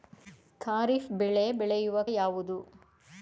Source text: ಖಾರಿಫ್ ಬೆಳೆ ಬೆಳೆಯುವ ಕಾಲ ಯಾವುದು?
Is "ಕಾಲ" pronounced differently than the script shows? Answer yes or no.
yes